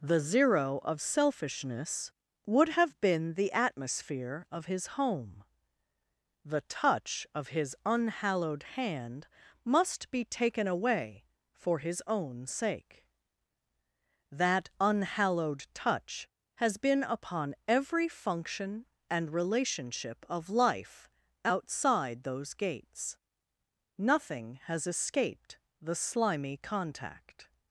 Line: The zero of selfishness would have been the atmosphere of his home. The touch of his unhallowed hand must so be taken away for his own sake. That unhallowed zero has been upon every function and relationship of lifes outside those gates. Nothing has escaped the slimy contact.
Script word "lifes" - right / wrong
wrong